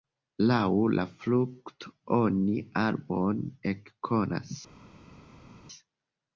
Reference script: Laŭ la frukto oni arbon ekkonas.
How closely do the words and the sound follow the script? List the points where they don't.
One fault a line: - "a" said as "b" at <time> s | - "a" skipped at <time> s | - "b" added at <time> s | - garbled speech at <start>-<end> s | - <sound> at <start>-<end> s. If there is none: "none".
none